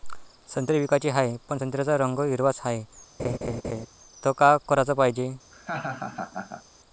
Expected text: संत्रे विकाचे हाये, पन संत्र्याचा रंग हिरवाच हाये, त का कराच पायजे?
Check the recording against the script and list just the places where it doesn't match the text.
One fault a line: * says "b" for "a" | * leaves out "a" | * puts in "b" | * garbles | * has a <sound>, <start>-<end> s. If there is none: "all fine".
* has a laugh, 3.2-3.9 s
* has a laugh, 5.5-6.6 s